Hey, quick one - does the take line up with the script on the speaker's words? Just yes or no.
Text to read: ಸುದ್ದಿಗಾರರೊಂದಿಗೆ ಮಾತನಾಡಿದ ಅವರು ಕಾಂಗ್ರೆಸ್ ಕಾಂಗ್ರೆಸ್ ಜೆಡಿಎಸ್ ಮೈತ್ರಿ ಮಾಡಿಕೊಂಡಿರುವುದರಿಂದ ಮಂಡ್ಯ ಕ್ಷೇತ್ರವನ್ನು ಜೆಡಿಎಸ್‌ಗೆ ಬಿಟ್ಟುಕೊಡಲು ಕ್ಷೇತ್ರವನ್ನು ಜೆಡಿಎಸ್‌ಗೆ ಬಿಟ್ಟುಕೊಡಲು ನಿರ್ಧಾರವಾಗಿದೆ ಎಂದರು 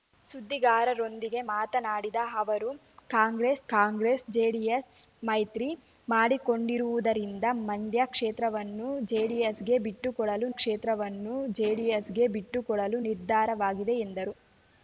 yes